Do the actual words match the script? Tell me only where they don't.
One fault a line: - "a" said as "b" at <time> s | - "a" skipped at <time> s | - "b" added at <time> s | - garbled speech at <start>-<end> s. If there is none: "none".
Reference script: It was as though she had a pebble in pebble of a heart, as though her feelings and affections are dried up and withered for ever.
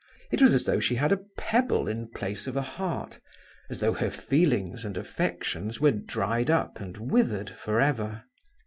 - "pebble" said as "place" at 2.1 s
- "are" said as "were" at 5.8 s